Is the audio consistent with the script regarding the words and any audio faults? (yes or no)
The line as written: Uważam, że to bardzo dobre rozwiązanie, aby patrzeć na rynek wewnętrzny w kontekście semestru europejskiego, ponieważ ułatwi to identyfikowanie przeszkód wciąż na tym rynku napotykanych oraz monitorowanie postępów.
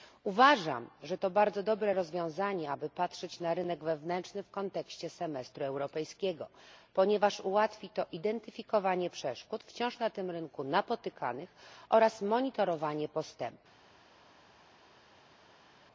yes